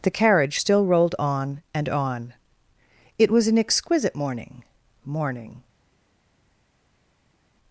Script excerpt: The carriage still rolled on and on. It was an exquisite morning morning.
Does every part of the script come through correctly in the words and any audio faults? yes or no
yes